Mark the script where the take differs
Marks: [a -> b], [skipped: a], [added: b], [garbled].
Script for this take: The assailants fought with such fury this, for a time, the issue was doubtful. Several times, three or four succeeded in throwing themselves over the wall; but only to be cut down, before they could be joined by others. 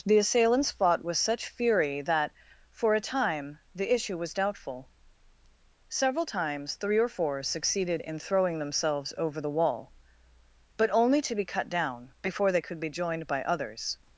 The assailants fought with such fury [this, -> that] for a time, the issue was doubtful. Several times, three or four succeeded in throwing themselves over the wall; but only to be cut down, before they could be joined by others.